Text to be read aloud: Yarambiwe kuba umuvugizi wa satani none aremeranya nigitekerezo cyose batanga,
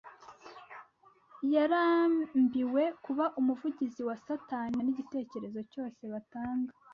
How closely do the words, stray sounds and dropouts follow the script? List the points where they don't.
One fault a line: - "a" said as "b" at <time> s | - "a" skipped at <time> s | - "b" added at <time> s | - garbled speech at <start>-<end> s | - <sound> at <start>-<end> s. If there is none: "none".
- "none aremeranya" skipped at 4.8 s